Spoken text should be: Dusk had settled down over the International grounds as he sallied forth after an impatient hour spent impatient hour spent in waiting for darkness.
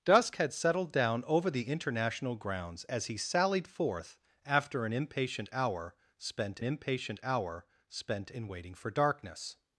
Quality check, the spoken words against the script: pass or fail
pass